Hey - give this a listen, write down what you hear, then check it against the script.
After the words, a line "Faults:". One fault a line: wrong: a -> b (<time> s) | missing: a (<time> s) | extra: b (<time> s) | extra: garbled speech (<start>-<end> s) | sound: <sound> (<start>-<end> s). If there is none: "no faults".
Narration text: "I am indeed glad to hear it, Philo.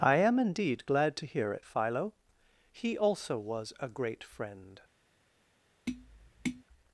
"I am indeed glad to hear it, Philo. He also was a great friend
Faults:
extra: He also was a great friend (2.7 s)
sound: tap (5.9-6.6 s)